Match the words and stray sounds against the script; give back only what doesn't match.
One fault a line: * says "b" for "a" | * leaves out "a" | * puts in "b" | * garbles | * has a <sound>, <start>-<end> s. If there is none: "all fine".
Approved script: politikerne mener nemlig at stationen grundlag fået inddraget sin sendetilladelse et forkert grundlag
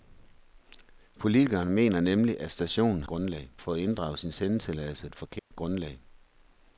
* has a dropout, 5.4-5.5 s